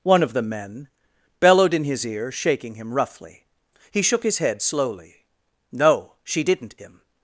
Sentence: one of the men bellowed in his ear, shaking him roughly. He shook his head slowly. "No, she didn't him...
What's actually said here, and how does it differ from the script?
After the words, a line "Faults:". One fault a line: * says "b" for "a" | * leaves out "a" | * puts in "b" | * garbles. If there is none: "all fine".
one of the men bellowed in his ear, shaking him roughly. He shook his head slowly. "No, she didn't him...
Faults:
all fine